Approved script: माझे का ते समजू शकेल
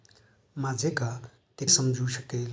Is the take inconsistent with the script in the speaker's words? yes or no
no